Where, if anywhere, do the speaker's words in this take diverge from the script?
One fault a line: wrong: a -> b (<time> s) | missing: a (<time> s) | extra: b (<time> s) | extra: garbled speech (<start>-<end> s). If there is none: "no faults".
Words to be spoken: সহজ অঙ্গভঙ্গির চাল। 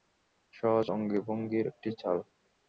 extra: একটি (1.7 s)